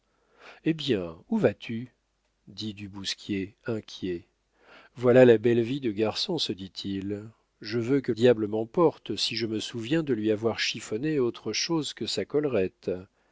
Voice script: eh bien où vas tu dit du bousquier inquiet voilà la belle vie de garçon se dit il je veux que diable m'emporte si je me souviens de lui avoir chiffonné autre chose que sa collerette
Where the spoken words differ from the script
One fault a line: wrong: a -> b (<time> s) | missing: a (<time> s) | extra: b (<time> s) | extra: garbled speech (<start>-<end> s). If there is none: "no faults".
no faults